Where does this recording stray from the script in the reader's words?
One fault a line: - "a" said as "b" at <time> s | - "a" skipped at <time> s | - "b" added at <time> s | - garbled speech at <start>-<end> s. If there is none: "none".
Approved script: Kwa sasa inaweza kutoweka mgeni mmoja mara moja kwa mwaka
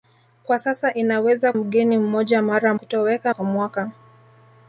- "kutoweka" skipped at 1.5 s
- "moja" said as "kutoweka" at 2.7 s